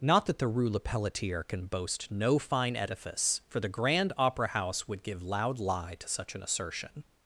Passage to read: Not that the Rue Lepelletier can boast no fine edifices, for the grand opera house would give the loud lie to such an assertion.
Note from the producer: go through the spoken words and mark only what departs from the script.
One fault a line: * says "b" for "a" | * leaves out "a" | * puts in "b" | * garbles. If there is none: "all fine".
* says "edifice" for "edifices"
* leaves out "the"